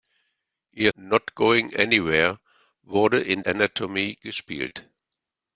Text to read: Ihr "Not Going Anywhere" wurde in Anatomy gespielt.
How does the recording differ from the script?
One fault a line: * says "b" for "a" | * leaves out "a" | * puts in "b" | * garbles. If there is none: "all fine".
all fine